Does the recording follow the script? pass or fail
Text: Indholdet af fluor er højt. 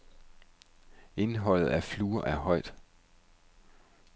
pass